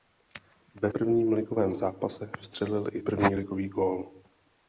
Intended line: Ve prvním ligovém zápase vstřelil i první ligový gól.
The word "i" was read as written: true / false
true